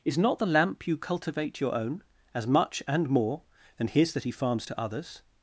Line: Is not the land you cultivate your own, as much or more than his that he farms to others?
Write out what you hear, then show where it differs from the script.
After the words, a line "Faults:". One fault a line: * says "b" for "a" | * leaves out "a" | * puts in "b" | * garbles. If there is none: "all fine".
Is not the lamp you cultivate your own, as much and more than his that he farms to others?
Faults:
* says "lamp" for "land"
* says "and" for "or"